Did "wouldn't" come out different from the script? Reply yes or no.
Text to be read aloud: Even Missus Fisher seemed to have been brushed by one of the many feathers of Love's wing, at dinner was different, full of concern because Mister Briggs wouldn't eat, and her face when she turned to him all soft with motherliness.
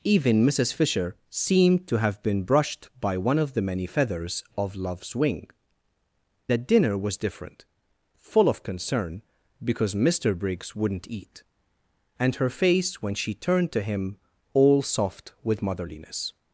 no